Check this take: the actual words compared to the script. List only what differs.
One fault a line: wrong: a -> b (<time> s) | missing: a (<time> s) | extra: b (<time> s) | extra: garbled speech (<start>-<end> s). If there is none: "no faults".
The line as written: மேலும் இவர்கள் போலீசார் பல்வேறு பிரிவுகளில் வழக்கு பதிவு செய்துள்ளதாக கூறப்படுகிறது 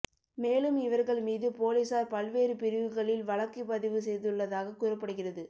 extra: மீது (1.2 s)